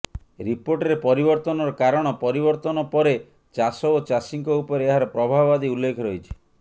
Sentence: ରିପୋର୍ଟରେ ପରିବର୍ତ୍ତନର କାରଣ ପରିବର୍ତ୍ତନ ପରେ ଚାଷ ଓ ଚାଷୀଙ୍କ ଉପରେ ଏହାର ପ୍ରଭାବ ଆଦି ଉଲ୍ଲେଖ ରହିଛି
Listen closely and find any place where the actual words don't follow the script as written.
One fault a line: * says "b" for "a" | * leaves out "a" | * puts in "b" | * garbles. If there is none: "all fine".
all fine